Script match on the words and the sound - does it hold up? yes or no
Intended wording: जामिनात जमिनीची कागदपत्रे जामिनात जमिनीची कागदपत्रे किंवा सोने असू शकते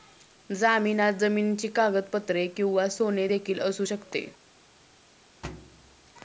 no